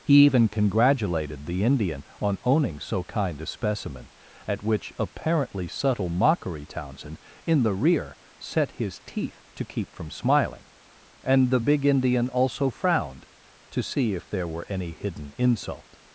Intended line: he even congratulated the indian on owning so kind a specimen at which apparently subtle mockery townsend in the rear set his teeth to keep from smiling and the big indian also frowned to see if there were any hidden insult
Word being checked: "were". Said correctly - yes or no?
yes